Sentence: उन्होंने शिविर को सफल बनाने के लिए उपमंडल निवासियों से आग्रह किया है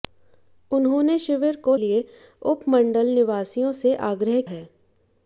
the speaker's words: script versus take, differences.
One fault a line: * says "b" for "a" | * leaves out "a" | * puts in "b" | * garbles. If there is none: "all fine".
* leaves out "सफल बनाने के"
* leaves out "किया"